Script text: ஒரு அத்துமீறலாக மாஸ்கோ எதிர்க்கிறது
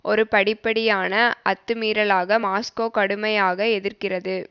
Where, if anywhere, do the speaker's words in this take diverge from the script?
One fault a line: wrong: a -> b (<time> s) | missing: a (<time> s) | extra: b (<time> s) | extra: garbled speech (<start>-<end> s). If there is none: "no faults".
extra: படிப்படியான (0.3 s)
extra: கடுமையாக (2.9 s)